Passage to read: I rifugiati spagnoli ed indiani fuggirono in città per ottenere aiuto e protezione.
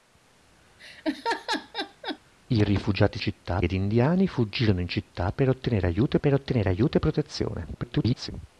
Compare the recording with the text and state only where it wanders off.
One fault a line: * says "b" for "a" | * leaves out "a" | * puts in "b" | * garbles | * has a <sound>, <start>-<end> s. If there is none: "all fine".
* has a laugh, 0.8-2.2 s
* says "città" for "spagnoli"
* puts in "per ottenere aiuto"
* garbles